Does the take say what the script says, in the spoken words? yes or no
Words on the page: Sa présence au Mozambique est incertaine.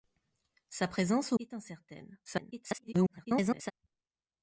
no